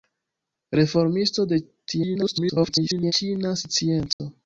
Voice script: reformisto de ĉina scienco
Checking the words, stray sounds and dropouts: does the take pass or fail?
fail